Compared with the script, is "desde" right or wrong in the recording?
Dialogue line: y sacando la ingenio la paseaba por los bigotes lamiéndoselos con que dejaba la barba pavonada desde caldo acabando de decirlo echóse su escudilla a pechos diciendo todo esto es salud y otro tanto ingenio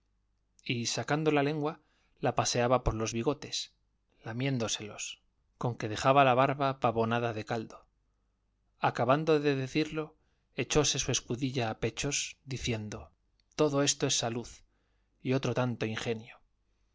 wrong